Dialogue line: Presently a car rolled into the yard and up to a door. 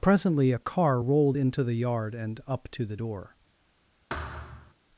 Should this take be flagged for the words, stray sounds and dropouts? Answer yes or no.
yes